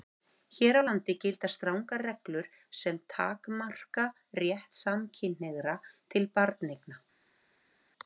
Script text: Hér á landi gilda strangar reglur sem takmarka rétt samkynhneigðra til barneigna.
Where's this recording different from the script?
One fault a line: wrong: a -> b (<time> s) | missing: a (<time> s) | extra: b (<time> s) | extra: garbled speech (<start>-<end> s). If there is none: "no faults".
no faults